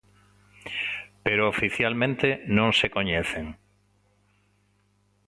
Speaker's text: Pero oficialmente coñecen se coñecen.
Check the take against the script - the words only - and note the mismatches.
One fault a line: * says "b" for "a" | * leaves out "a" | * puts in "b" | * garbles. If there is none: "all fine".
* says "non" for "coñecen"